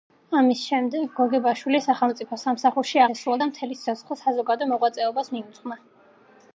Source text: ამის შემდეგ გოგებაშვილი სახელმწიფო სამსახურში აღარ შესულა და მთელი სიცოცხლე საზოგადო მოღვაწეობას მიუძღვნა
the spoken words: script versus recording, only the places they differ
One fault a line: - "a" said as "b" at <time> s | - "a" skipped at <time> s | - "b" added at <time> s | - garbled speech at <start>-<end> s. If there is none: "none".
- "აღარ" skipped at 3.0 s